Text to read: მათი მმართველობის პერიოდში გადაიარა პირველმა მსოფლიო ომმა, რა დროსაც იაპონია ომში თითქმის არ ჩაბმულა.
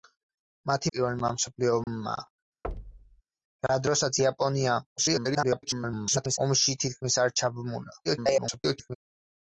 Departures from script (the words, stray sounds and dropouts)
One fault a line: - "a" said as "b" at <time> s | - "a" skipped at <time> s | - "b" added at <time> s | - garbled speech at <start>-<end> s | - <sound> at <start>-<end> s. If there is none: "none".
- "მმართველობის პერიოდში გადაიარა" skipped at 0.9 s
- dropout at 1.8-1.9 s
- thud at 2.6-3.2 s
- garbled speech at 5.0-6.4 s
- garbled speech at 8.0-9.0 s